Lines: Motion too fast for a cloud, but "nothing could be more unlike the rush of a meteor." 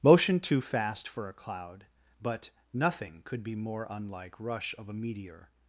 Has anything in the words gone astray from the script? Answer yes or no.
yes